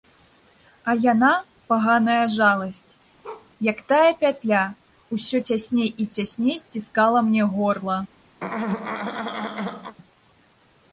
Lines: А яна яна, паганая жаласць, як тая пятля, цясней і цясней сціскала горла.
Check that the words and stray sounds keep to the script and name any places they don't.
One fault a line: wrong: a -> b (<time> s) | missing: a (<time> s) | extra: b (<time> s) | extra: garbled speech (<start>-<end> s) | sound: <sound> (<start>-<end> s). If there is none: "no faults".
missing: яна (1.3 s)
sound: bark (3.2-3.5 s)
extra: усё (5.2 s)
extra: мне (7.3 s)
sound: throat clearing (8.4-10.0 s)